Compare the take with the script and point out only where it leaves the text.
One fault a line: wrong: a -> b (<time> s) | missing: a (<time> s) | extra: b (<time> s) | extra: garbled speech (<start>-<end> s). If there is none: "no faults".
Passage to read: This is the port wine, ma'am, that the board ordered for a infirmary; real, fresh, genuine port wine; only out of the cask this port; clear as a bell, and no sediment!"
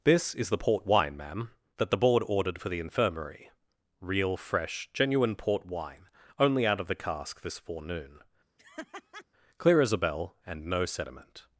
wrong: a -> the (2.7 s)
wrong: port -> forenoon (7.6 s)